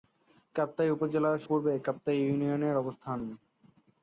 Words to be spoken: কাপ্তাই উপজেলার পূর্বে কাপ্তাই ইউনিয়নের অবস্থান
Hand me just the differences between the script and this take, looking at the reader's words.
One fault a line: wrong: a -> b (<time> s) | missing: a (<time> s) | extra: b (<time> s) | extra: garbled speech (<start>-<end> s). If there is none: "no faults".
no faults